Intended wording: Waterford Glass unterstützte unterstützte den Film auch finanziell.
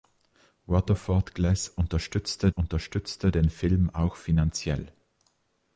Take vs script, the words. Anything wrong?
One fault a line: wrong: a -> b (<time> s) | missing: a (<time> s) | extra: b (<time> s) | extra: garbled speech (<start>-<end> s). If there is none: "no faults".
no faults